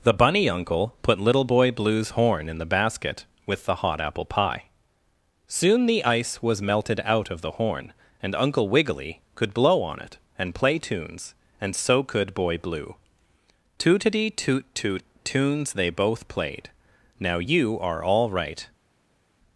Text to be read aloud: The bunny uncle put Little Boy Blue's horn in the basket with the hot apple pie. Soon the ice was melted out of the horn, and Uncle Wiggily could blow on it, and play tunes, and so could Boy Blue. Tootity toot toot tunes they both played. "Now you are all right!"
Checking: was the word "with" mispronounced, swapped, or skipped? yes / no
no